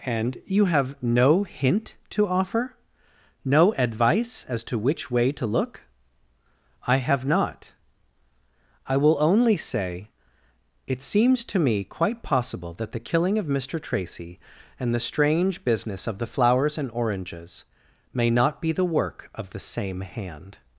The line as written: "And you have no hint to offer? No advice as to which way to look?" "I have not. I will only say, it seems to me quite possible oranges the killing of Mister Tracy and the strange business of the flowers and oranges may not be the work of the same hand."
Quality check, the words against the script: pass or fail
fail